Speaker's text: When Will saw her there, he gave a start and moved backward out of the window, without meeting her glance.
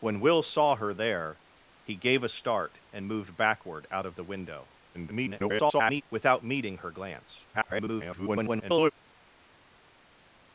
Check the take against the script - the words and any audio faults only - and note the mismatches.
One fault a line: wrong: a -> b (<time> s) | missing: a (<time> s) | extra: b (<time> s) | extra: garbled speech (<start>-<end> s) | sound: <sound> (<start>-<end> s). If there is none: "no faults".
extra: garbled speech (4.9-6.0 s)
extra: garbled speech (7.5-8.9 s)